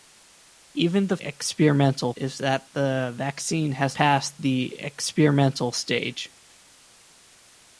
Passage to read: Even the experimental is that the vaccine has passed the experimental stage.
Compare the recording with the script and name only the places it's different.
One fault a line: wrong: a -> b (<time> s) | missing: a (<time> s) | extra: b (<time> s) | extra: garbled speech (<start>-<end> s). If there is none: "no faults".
no faults